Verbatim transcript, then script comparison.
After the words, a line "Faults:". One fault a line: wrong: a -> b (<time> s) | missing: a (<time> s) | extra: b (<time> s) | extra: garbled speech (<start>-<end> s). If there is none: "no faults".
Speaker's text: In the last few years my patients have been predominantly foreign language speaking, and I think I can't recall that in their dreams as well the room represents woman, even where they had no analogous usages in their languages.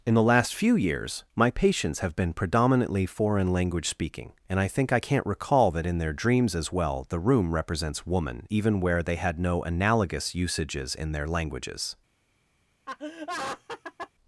In the last few years my patients have been predominantly foreign language speaking, and I think I can't recall that in their dreams as well the room represents woman, even where they had no analogous usages in their languages.
Faults:
no faults